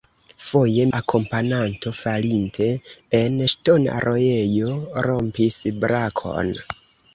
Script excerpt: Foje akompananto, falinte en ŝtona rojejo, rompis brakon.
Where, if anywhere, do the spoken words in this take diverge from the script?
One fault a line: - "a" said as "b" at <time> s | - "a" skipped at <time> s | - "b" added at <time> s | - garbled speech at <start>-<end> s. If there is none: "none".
none